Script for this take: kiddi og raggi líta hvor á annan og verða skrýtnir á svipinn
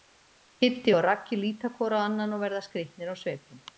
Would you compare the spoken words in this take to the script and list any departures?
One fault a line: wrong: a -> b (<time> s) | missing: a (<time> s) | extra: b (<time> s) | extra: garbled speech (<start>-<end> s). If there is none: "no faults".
no faults